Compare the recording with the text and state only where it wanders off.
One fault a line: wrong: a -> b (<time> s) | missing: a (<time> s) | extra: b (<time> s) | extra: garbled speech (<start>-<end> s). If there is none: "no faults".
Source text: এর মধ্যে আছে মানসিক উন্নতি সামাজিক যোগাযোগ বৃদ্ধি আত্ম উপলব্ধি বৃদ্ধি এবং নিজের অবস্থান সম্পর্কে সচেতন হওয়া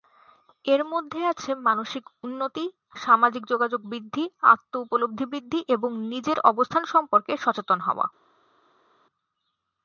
no faults